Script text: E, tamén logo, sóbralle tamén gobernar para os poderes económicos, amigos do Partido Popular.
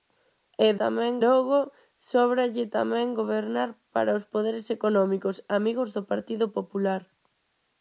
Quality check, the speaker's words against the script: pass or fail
pass